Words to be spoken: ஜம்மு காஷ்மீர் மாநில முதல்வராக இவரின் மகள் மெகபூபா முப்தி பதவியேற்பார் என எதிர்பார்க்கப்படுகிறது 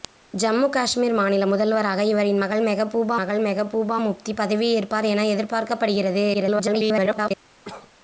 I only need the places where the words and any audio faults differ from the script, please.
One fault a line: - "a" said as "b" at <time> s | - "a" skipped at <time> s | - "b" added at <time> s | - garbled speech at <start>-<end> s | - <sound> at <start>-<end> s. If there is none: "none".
- "மகள் மெகபூபா" added at 3.2 s
- garbled speech at 6.3-7.3 s
- cough at 7.6-7.9 s